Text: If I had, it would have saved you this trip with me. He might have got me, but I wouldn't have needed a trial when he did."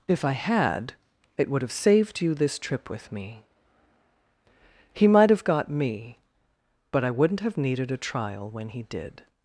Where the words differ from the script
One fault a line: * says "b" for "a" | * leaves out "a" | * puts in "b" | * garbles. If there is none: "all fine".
all fine